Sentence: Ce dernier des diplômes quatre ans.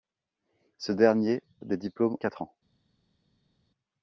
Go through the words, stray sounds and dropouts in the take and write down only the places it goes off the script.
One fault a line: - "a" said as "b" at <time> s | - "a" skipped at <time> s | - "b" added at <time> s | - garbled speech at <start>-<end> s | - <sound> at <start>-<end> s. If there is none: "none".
none